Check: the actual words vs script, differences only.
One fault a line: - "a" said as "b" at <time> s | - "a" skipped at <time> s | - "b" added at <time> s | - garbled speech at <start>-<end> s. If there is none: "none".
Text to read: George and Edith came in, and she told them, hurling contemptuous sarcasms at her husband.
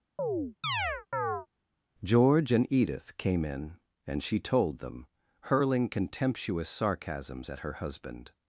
none